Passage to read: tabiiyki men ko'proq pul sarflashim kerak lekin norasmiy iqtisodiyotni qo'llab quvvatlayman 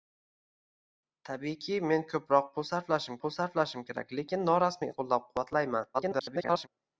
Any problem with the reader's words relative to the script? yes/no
yes